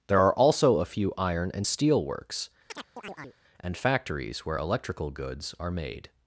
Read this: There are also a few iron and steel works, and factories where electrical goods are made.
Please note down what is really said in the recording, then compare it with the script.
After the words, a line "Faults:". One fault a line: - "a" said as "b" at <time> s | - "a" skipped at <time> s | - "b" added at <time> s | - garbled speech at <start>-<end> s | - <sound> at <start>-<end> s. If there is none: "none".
There are also a few iron and steel works, and factories where electrical goods are made.
Faults:
- chirp at 2.7-3.4 s